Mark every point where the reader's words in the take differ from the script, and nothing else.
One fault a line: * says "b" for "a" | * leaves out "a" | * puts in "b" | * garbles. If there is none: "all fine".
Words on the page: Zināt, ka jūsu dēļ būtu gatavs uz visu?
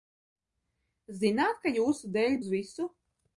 * leaves out "būtu gatavs"